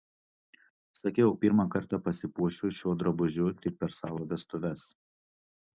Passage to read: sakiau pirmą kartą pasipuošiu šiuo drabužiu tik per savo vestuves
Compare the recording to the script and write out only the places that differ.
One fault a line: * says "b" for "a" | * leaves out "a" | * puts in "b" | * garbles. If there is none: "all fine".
all fine